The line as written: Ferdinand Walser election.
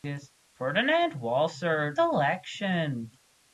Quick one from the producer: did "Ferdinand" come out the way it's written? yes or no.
yes